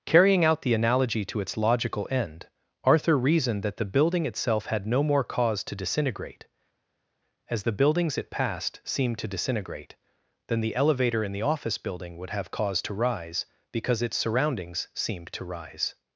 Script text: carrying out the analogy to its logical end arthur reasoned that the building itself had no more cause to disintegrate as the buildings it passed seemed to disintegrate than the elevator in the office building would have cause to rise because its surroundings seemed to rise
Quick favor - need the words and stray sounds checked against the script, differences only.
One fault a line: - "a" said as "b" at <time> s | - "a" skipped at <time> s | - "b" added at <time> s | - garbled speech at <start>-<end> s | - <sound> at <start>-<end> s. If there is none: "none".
none